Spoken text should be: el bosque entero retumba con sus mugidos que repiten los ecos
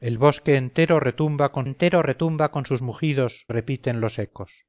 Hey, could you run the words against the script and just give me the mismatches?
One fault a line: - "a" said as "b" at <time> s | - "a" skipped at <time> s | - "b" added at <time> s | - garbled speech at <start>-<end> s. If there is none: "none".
- "entero retumba con" added at 1.6 s
- "que" skipped at 3.5 s